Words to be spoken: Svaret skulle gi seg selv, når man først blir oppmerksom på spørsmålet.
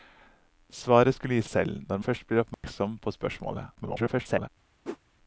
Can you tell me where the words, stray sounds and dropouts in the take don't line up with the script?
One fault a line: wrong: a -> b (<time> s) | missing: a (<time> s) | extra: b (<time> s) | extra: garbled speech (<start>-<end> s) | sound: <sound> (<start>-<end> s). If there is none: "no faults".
missing: seg (1.4 s)
missing: man (2.0 s)
sound: dropout (2.5-2.6 s)
extra: garbled speech (3.7-4.5 s)
sound: whoosh (4.8-5.0 s)